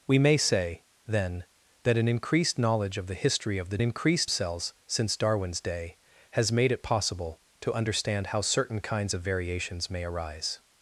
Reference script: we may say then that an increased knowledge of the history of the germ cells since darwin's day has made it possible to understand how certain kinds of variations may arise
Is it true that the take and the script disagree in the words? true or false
true